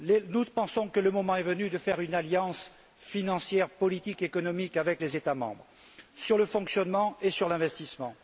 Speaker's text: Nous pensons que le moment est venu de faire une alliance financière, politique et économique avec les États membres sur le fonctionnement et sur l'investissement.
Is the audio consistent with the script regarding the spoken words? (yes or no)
yes